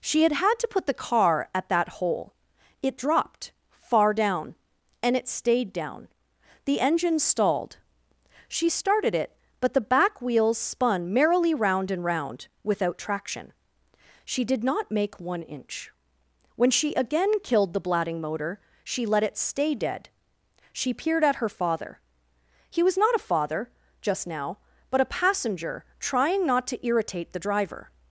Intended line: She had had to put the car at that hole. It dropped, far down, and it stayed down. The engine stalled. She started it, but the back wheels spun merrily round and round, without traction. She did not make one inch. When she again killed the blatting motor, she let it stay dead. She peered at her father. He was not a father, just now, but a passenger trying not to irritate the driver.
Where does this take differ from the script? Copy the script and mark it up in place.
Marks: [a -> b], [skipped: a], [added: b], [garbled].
She had had to put the car at that hole. It dropped, far down, and it stayed down. The engine stalled. She started it, but the back wheels spun merrily round and round, without traction. She did not make one inch. When she again killed the blatting motor, she let it stay dead. She peered at her father. He was not a father, just now, but a passenger trying not to irritate the driver.